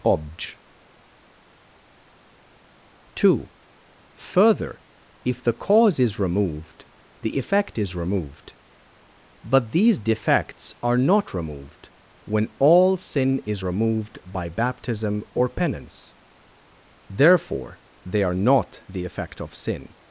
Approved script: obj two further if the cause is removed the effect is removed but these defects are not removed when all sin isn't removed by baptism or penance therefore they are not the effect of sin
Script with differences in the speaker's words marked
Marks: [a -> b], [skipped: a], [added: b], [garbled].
obj two further if the cause is removed the effect is removed but these defects are not removed when all sin [isn't -> is] removed by baptism or penance therefore they are not the effect of sin